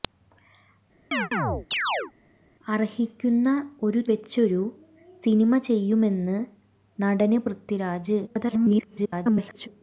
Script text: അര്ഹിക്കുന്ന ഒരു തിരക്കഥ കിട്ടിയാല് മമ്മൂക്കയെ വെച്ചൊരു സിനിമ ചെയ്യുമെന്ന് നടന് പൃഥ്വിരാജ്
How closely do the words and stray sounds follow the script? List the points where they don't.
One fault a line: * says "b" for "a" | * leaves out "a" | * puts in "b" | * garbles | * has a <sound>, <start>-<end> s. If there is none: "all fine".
* has a chirp, 1.1-2.1 s
* leaves out "തിരക്കഥ കിട്ടിയാല് മമ്മൂക്കയെ"
* garbles